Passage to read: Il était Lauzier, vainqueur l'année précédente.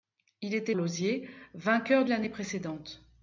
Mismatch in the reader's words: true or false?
false